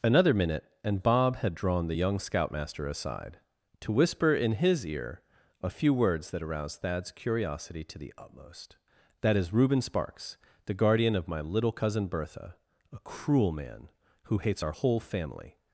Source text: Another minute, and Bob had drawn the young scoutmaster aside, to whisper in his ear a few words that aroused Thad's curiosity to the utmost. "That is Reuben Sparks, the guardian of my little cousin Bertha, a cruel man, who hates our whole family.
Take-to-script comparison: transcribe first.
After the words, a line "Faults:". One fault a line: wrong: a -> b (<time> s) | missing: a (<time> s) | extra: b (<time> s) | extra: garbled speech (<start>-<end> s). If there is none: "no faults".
Another minute, and Bob had drawn the young scoutmaster aside, to whisper in his ear a few words that aroused Thad's curiosity to the utmost. "That is Reuben Sparks, the guardian of my little cousin Bertha, a cruel man, who hates our whole family.
Faults:
no faults